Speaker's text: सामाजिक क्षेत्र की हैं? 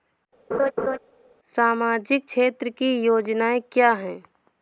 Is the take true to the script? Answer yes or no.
no